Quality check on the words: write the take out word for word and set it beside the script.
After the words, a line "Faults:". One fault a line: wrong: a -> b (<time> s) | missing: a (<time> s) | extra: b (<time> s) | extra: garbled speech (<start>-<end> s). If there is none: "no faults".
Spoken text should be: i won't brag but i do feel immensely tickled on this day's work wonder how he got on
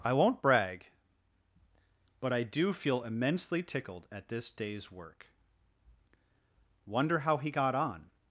i won't brag but i do feel immensely tickled at this day's work wonder how he got on
Faults:
wrong: on -> at (4.1 s)